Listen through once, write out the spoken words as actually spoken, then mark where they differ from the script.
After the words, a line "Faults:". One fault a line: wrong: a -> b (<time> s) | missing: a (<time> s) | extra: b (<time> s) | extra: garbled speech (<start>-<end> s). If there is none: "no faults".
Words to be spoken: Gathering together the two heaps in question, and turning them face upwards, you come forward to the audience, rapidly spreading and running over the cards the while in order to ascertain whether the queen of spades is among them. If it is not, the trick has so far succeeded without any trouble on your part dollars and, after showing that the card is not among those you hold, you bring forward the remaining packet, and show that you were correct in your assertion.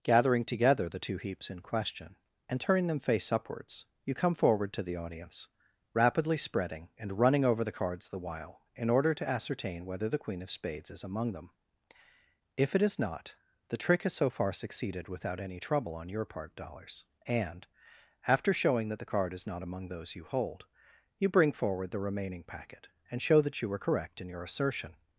Gathering together the two heaps in question, and turning them face upwards, you come forward to the audience, rapidly spreading and running over the cards the while in order to ascertain whether the queen of spades is among them. If it is not, the trick has so far succeeded without any trouble on your part dollars and, after showing that the card is not among those you hold, you bring forward the remaining packet, and show that you were correct in your assertion.
Faults:
no faults